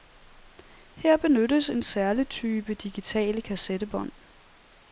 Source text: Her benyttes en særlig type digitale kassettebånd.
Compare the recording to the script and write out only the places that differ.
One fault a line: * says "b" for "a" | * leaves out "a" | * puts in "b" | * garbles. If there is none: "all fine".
all fine